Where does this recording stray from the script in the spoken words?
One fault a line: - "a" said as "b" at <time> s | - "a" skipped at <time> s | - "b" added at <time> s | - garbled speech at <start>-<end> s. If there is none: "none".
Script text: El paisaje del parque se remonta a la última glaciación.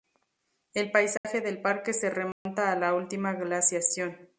none